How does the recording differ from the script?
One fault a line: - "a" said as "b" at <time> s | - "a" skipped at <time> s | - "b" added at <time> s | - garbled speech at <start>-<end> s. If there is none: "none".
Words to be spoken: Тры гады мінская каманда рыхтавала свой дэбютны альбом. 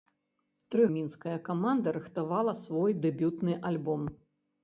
- "гады" skipped at 0.9 s